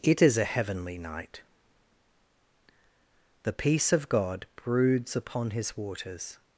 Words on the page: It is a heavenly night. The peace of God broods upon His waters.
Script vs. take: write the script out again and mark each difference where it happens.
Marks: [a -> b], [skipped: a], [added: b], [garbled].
It is a heavenly night. The peace of God broods upon His waters.